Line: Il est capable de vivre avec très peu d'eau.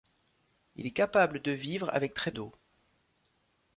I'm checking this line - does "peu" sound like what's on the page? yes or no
no